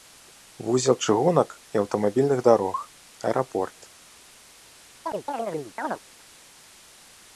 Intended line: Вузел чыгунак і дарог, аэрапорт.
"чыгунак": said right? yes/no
yes